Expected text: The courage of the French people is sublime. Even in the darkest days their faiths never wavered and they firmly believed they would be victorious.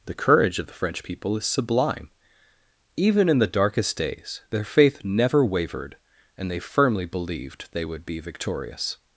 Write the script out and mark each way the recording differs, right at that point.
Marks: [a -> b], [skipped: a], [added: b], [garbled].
The courage of the French people is sublime. Even in the darkest days their [faiths -> faith] never wavered and they firmly believed they would be victorious.